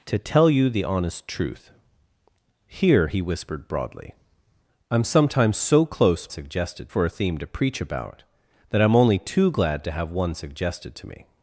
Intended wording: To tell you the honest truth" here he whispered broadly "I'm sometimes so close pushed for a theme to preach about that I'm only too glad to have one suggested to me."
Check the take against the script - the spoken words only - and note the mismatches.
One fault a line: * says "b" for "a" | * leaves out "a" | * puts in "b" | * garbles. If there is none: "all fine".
* says "suggested" for "pushed"